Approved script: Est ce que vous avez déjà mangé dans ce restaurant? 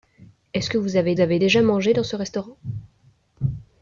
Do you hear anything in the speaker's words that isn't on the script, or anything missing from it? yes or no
yes